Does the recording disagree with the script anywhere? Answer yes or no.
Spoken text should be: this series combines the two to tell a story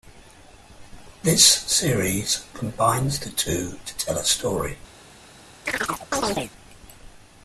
no